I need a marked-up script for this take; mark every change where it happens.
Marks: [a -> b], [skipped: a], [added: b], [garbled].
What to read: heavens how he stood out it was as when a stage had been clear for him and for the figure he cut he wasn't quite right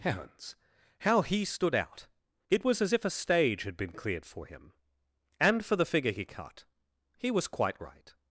heavens how he stood out it was as [when -> if] a stage had been [clear -> cleared] for him and for the figure he cut he [wasn't -> was] quite right